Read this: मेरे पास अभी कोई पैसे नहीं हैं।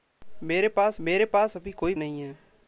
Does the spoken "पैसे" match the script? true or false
false